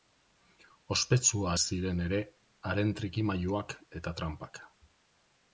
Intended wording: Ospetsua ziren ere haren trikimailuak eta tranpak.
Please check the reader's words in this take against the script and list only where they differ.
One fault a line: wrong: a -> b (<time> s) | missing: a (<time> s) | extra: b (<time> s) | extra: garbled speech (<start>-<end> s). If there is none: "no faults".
no faults